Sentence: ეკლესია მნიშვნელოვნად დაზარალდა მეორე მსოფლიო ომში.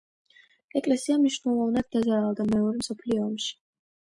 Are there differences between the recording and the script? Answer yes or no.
no